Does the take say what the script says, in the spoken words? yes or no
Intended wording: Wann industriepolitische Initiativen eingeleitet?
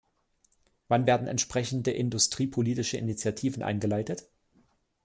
no